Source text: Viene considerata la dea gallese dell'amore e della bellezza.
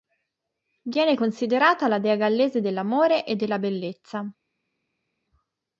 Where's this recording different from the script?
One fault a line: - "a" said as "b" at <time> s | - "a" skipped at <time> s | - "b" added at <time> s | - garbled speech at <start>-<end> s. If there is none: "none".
none